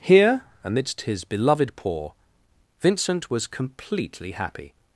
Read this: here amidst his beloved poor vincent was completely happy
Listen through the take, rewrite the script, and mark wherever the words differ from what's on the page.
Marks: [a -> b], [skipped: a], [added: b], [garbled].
here amidst his beloved poor vincent was completely happy